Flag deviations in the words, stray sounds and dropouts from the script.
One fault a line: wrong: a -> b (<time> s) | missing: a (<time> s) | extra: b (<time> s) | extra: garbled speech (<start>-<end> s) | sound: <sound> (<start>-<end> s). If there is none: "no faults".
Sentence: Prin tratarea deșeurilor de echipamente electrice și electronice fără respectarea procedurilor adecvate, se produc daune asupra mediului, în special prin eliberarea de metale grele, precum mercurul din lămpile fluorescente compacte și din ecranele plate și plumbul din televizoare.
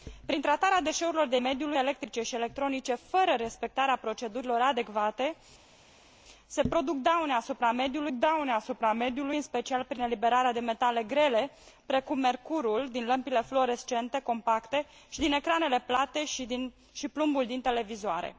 wrong: echipamente -> mediului (1.4 s)
extra: daune asupra mediului (8.1 s)